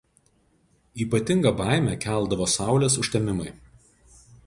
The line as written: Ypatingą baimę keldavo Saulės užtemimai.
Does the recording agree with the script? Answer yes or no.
yes